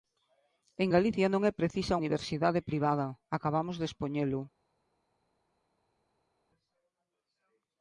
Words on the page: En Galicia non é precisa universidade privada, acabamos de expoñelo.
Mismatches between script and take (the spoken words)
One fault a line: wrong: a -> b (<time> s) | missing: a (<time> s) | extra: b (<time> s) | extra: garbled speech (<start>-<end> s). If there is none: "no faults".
no faults